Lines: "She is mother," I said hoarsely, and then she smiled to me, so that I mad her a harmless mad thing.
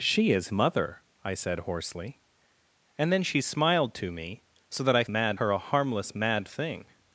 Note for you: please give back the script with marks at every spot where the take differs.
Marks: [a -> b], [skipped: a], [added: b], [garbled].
"She is mother," I said hoarsely, and then she smiled to me, so that I mad her a harmless mad thing.